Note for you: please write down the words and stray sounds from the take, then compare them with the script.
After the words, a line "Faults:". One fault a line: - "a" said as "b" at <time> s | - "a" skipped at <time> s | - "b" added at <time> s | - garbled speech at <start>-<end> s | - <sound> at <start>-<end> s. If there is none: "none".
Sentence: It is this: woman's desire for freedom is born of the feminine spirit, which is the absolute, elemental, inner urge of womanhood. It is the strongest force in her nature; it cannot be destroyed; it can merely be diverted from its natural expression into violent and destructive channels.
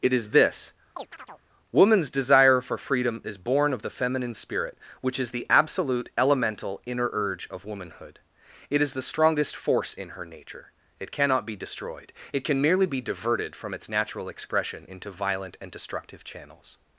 It is this: woman's desire for freedom is born of the feminine spirit, which is the absolute, elemental, inner urge of womanhood. It is the strongest force in her nature; it cannot be destroyed; it can merely be diverted from its natural expression into violent and destructive channels.
Faults:
- chirp at 1.0-1.4 s